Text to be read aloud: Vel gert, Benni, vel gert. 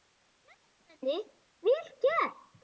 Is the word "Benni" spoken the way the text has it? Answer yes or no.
yes